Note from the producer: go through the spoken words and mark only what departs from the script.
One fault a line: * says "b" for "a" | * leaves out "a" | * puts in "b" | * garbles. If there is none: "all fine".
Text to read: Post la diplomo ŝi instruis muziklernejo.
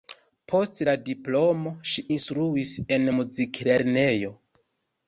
* puts in "en"